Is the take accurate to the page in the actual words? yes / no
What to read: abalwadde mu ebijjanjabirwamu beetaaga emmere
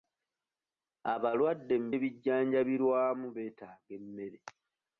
yes